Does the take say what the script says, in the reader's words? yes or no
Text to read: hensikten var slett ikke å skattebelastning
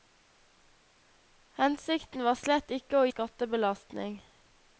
yes